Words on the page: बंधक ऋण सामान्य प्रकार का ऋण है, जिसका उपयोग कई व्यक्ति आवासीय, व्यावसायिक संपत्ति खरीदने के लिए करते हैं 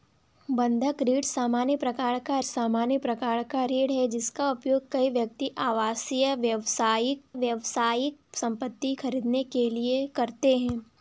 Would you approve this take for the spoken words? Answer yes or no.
no